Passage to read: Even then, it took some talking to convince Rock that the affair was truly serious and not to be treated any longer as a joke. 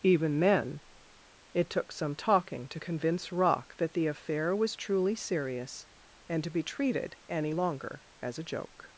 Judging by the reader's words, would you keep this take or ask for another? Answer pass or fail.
fail